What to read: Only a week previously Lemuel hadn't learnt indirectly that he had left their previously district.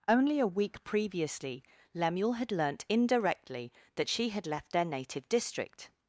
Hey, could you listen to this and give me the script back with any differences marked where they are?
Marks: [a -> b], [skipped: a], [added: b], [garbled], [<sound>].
Only a week previously Lemuel [hadn't -> had] learnt indirectly that [he -> she] had left their [previously -> native] district.